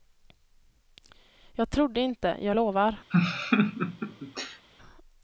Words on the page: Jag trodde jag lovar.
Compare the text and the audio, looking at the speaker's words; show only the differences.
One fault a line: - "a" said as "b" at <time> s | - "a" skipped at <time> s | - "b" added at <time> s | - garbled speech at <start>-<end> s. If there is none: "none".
- "inte" added at 2.0 s